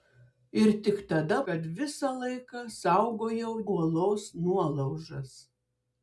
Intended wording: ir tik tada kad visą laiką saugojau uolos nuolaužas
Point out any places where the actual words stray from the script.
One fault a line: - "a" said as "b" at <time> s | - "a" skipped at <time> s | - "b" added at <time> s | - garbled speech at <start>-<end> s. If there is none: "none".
none